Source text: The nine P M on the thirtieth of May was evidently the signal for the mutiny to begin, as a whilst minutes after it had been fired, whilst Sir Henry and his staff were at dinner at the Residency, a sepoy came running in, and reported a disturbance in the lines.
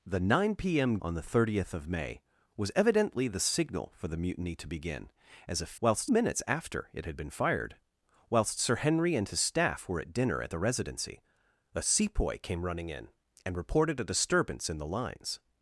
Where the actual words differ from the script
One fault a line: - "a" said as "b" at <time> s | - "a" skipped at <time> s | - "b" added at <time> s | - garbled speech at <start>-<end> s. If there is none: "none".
none